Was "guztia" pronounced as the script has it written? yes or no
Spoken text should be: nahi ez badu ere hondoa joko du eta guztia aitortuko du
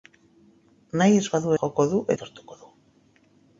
no